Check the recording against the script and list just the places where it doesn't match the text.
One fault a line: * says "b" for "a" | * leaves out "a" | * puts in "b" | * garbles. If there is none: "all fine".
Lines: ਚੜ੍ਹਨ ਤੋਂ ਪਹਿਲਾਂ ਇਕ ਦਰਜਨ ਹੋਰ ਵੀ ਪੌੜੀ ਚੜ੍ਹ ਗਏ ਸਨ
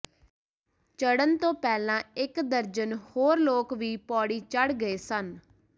* puts in "ਲੋਕ"